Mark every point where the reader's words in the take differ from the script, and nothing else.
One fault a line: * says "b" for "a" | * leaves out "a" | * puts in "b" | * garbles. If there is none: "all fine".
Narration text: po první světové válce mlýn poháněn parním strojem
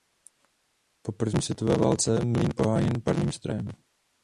all fine